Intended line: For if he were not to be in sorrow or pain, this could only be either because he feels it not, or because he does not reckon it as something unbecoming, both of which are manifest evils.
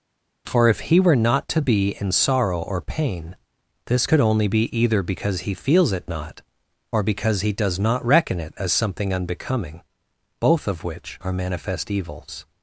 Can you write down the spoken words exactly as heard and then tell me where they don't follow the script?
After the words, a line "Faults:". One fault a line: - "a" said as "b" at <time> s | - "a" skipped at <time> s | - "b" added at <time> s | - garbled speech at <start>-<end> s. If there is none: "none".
For if he were not to be in sorrow or pain, this could only be either because he feels it not, or because he does not reckon it as something unbecoming, both of which are manifest evils.
Faults:
none